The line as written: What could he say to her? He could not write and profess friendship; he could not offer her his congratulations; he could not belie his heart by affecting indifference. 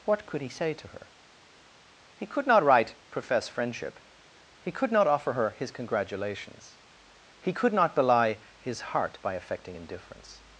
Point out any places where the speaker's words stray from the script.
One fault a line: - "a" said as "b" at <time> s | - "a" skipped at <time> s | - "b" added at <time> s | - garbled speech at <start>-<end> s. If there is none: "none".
- "and" skipped at 3.0 s